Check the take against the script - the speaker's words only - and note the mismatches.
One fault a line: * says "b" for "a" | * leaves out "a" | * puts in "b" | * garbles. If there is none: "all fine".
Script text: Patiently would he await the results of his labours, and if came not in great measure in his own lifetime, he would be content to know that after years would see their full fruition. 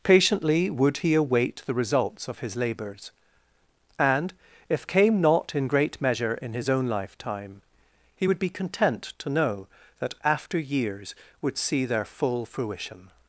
all fine